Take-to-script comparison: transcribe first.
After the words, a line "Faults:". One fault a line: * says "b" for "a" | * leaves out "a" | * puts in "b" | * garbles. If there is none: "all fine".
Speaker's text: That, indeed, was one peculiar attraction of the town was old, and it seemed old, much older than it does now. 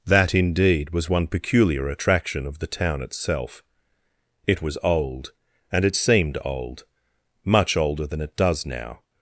That, indeed, was one peculiar attraction of the town itself; it was old, and it seemed old, much older than it does now.
Faults:
* puts in "itself it"